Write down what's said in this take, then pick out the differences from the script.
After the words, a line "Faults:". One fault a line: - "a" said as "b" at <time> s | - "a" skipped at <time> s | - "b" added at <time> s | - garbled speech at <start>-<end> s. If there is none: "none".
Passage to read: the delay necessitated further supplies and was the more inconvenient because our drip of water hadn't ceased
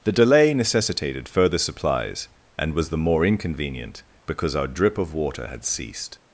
the delay necessitated further supplies and was the more inconvenient because our drip of water had ceased
Faults:
- "hadn't" said as "had" at 5.5 s